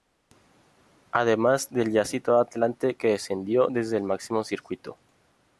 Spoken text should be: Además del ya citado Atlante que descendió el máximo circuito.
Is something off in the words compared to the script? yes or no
yes